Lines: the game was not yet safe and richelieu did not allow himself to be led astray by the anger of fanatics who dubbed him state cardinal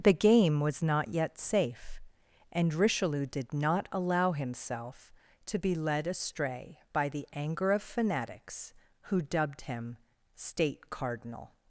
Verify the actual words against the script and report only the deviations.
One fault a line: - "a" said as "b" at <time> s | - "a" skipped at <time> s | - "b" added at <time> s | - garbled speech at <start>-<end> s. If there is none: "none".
none